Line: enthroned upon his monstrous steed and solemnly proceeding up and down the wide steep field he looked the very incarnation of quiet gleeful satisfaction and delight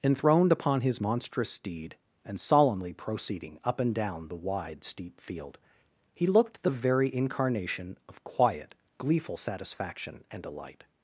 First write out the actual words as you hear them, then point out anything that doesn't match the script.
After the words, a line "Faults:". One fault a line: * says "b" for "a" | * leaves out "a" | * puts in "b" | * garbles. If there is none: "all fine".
enthroned upon his monstrous steed and solemnly proceeding up and down the wide steep field he looked the very incarnation of quiet gleeful satisfaction and delight
Faults:
all fine